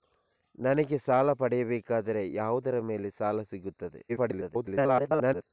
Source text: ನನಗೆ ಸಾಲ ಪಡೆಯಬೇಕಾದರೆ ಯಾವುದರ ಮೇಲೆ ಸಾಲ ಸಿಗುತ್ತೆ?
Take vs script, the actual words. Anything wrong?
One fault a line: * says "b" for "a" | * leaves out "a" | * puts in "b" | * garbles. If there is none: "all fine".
* garbles